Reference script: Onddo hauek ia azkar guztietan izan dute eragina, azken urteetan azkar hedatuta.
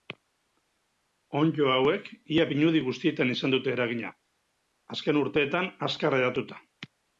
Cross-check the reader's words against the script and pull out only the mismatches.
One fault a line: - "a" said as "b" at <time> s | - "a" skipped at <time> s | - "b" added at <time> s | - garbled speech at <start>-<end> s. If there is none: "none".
- "azkar" said as "pinudi" at 2.5 s